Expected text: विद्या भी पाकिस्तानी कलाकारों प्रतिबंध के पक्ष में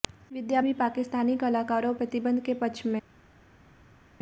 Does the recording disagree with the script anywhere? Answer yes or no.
no